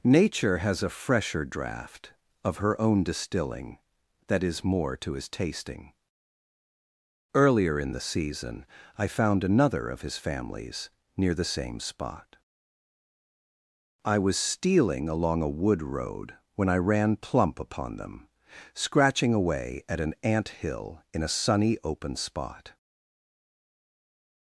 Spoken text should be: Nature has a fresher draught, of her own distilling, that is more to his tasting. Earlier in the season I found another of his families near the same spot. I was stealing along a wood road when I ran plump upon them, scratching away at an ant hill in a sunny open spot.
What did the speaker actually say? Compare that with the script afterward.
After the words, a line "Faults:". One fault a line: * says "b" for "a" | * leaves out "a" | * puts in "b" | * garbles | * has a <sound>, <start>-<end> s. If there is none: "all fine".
Nature has a fresher draught, of her own distilling, that is more to his tasting. Earlier in the season I found another of his families near the same spot. I was stealing along a wood road when I ran plump upon them, scratching away at an ant hill in a sunny open spot.
Faults:
all fine